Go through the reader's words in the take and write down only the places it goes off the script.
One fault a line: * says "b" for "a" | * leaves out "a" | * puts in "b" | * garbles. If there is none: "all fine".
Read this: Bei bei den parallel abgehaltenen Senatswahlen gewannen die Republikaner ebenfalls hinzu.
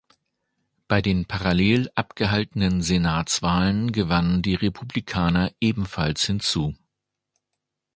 * leaves out "bei"